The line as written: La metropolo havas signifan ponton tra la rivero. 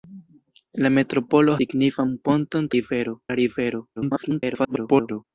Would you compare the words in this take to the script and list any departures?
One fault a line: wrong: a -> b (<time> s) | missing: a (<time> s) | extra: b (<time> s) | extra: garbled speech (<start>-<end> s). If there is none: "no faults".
missing: havas (1.6 s)
wrong: tra -> rivero (2.8 s)
extra: garbled speech (4.0-5.2 s)